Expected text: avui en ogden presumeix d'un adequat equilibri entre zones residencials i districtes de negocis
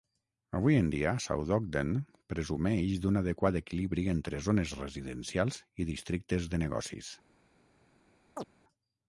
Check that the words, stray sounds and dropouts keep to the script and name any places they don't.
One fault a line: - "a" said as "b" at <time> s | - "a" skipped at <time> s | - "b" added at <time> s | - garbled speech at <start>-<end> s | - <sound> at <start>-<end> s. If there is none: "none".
- "dia south" added at 0.9 s
- chirp at 8.4-8.4 s